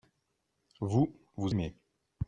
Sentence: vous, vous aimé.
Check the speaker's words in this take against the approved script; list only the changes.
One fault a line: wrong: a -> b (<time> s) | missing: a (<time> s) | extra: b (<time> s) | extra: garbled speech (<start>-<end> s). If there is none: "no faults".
no faults